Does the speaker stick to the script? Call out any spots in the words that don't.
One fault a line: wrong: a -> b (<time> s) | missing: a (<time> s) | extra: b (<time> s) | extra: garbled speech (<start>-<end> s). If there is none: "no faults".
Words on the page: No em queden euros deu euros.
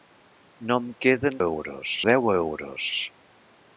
no faults